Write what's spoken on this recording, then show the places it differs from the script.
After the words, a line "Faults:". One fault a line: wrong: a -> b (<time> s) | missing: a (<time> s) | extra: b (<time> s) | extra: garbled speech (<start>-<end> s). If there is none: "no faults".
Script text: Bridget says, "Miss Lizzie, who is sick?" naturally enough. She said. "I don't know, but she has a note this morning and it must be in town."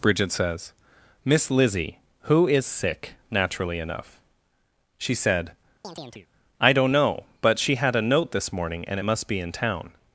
Bridget says, "Miss Lizzie, who is sick?" naturally enough. She said. "I don't know, but she had a note this morning and it must be in town."
Faults:
wrong: has -> had (7.8 s)